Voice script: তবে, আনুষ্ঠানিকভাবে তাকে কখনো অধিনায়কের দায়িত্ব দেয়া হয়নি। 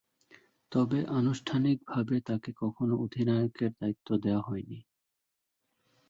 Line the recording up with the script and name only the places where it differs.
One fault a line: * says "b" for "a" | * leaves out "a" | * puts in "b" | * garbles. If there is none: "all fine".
all fine